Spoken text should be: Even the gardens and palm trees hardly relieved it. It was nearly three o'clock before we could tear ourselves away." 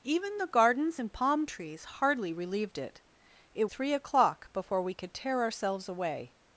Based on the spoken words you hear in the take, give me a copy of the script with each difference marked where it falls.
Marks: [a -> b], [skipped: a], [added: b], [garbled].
Even the gardens and palm trees hardly relieved it. It [skipped: was nearly] three o'clock before we could tear ourselves away."